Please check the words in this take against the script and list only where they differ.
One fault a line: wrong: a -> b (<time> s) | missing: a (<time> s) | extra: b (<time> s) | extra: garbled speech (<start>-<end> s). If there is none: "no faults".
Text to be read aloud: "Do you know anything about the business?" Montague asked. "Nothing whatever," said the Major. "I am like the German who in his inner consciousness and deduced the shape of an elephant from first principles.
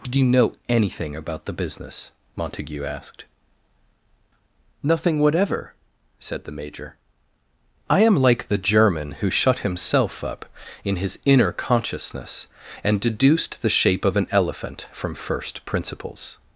extra: shut himself up (9.3 s)